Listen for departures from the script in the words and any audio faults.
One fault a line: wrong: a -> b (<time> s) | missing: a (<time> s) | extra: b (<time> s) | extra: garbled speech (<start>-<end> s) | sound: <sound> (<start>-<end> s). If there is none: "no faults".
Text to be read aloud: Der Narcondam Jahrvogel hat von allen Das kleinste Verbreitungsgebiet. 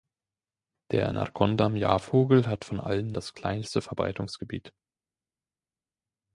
no faults